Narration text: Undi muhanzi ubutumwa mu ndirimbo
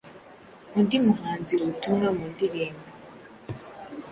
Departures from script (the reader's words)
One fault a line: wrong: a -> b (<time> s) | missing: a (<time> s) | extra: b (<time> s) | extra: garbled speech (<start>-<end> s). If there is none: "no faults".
no faults